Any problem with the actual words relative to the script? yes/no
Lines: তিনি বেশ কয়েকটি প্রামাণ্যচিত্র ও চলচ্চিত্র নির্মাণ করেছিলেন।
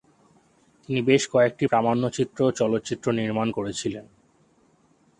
no